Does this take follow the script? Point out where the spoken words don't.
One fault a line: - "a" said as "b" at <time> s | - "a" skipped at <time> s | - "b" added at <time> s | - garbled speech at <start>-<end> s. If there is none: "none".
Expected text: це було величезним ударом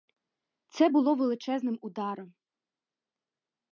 none